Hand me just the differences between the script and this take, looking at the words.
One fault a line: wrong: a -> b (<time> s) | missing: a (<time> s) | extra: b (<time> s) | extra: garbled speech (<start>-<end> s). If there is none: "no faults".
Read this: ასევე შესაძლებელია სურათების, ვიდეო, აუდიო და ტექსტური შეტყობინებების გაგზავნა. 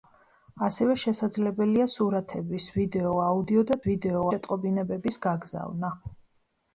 wrong: ტექსტური -> ვიდეო (3.9 s)